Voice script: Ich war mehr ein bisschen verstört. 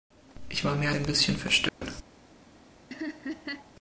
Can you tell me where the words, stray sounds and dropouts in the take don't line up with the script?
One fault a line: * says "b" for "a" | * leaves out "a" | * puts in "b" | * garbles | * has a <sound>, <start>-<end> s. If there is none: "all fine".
* has a dropout, 1.7-1.8 s
* has a laugh, 2.9-3.7 s